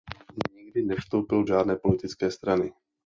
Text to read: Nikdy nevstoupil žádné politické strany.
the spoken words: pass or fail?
pass